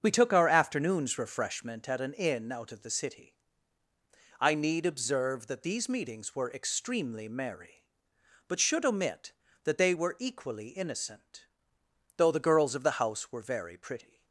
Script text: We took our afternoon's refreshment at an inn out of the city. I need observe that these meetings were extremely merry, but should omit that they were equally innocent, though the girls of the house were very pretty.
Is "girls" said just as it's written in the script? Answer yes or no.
yes